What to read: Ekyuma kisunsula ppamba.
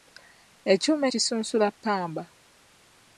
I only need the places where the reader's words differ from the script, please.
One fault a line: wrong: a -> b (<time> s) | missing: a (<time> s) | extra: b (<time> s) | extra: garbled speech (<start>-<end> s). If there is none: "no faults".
no faults